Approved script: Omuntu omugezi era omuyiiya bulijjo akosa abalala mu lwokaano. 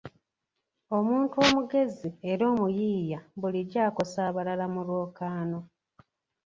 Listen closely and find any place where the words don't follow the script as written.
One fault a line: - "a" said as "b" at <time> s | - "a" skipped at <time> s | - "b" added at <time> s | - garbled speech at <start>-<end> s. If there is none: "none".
none